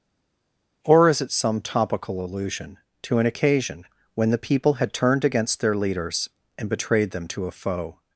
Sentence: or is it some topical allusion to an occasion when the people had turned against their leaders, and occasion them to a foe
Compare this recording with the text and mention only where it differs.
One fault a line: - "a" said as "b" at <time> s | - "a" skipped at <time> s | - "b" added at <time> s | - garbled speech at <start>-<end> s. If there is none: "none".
- "occasion" said as "betrayed" at 6.7 s